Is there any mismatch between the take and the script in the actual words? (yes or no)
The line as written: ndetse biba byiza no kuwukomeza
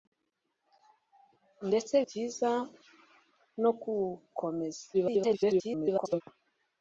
yes